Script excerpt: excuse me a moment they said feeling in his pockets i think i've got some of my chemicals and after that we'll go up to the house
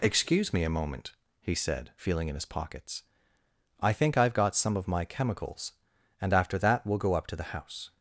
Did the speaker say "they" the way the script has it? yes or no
no